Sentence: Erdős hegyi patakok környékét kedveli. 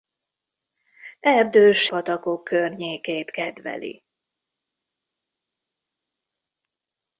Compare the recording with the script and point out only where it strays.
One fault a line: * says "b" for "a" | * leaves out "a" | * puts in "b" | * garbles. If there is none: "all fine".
* leaves out "hegyi"